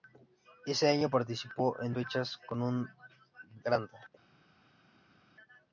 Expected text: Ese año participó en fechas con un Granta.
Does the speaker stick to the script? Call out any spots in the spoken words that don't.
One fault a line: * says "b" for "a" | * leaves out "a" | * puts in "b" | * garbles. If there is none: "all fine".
all fine